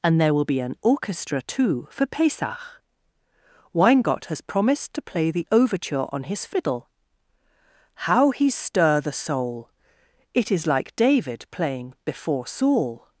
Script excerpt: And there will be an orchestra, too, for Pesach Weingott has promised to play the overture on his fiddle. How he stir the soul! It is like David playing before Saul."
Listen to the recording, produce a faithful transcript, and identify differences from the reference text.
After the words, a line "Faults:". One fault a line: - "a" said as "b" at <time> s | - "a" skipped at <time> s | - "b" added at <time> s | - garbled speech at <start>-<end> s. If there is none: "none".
And there will be an orchestra, too, for Pesach Weingott has promised to play the overture on his fiddle. How he stir the soul! It is like David playing before Saul."
Faults:
none